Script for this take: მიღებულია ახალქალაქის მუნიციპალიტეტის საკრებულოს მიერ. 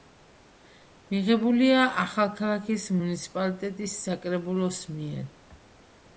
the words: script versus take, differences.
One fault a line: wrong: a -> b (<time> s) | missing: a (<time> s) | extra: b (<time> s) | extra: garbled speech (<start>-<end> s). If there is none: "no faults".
no faults